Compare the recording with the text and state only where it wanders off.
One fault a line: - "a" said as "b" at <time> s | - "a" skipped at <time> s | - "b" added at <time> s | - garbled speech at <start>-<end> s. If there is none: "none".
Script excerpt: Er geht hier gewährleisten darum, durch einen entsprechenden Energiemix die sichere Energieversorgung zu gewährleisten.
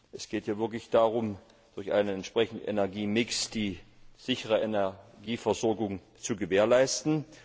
- "Er" said as "Es" at 0.1 s
- "gewährleisten" said as "wirklich" at 0.6 s